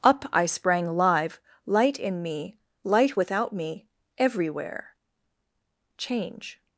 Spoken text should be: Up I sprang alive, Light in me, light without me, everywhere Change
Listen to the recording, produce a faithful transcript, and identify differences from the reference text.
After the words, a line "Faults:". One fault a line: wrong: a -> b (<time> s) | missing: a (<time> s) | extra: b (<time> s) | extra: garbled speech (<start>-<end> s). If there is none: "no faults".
Up I sprang live, Light in me, light without me, everywhere Change
Faults:
wrong: alive -> live (1.0 s)